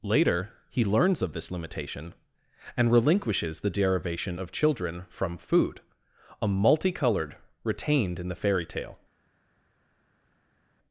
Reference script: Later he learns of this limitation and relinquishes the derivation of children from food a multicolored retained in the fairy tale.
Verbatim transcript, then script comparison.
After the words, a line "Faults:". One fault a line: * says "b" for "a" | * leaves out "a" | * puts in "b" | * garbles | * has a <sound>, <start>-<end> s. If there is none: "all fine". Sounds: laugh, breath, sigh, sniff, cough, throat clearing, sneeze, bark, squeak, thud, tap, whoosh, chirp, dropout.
Later he learns of this limitation and relinquishes the derivation of children from food a multicolored retained in the fairy tale.
Faults:
all fine